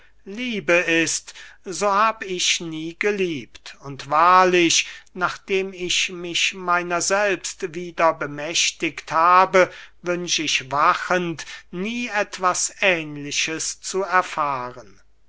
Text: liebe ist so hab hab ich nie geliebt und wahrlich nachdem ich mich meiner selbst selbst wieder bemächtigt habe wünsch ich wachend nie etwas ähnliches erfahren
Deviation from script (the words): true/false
true